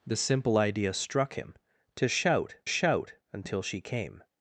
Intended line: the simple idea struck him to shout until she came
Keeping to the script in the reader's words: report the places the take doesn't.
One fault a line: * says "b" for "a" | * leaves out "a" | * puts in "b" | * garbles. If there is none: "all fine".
* puts in "shout"